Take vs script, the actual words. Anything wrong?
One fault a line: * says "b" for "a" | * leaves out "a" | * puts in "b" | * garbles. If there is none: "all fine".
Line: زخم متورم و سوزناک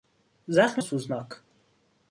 * leaves out "متورم"